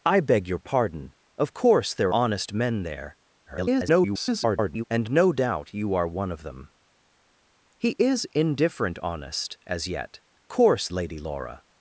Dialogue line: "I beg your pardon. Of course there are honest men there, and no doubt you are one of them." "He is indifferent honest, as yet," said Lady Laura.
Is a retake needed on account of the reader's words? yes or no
yes